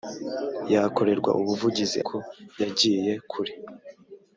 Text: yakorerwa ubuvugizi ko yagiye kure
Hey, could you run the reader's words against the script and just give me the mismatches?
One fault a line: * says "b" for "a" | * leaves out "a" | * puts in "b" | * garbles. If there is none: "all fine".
all fine